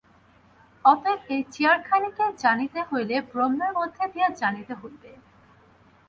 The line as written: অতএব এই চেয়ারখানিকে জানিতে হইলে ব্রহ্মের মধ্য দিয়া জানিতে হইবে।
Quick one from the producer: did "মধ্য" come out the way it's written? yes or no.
yes